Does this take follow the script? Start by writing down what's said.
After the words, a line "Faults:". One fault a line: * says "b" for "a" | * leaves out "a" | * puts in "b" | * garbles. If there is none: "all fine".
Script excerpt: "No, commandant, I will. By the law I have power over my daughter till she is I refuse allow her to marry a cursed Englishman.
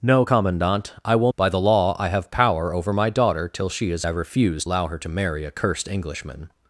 "No, commandant, I will. By the law I have power over my daughter till she is I refuse allow her to marry a cursed Englishman.
Faults:
all fine